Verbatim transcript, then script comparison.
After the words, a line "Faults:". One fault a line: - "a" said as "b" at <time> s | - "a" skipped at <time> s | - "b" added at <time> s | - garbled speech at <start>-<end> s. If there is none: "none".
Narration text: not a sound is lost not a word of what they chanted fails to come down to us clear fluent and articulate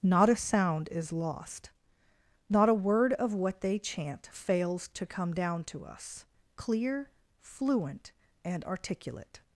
not a sound is lost not a word of what they chant fails to come down to us clear fluent and articulate
Faults:
- "chanted" said as "chant" at 3.8 s